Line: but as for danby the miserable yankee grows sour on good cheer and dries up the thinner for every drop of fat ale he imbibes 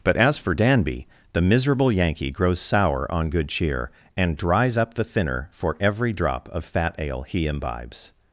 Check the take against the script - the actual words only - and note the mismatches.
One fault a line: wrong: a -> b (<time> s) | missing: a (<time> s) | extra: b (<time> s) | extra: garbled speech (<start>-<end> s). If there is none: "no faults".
no faults